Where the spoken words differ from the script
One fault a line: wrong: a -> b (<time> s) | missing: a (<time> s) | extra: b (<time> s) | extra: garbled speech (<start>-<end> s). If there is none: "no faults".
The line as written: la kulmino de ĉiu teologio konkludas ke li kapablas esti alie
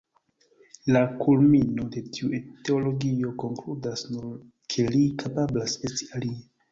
wrong: ĉiu -> tiu (2.2 s)
extra: nur (4.2 s)